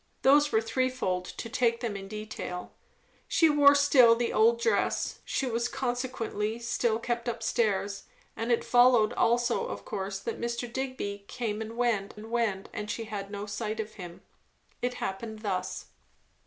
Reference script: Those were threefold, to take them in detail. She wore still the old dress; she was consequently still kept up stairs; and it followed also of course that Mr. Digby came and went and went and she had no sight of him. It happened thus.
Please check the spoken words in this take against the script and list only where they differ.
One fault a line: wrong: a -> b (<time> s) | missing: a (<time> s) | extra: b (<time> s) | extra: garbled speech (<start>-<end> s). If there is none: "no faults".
no faults